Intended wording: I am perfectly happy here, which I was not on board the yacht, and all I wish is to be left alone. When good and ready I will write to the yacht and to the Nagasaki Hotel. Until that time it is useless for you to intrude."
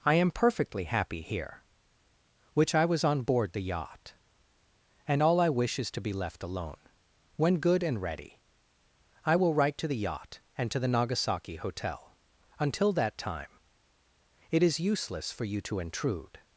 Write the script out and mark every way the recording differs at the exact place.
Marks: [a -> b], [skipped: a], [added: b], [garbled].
I am perfectly happy here, which I was [skipped: not] on board the yacht, and all I wish is to be left alone. When good and ready I will write to the yacht and to the Nagasaki Hotel. Until that time it is useless for you to intrude."